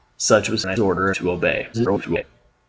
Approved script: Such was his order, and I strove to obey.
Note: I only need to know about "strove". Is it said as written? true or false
false